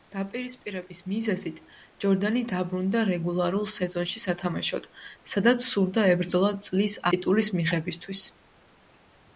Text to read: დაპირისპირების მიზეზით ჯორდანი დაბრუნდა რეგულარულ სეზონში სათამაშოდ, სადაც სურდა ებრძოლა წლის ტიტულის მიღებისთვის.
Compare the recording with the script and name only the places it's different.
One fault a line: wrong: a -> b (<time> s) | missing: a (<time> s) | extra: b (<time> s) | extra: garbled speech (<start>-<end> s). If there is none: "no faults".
no faults